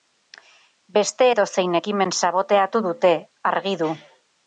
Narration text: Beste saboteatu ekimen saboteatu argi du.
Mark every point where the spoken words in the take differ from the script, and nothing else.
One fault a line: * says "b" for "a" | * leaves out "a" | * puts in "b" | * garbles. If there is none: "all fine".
* says "edozein" for "saboteatu"
* puts in "dute"